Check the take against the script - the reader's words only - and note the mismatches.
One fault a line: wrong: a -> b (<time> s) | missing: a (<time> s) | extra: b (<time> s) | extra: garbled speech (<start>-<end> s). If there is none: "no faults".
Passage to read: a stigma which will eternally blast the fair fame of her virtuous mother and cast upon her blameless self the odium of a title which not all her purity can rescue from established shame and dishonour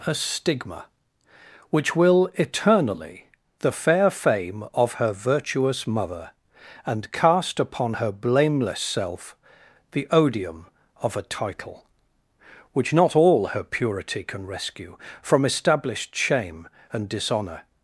missing: blast (3.3 s)